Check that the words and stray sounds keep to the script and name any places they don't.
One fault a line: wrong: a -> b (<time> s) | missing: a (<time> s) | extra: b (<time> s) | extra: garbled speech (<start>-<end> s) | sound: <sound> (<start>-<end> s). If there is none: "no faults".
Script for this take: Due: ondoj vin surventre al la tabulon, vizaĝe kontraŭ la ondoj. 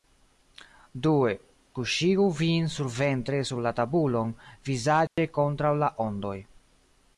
wrong: ondoj -> kuŝigu (1.8 s)
wrong: al -> sur (3.5 s)
sound: dropout (5.1-5.2 s)